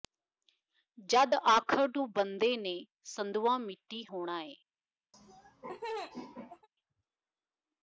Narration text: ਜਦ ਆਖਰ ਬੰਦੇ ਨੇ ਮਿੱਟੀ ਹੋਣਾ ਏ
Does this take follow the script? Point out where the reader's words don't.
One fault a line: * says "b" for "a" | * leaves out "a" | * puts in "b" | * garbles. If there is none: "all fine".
* puts in "ਨੂੰ"
* puts in "ਸੰਧੂਆ"